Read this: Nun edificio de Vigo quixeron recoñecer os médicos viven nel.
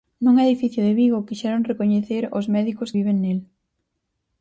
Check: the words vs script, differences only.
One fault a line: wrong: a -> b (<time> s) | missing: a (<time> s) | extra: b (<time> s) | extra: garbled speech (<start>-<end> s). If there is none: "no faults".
no faults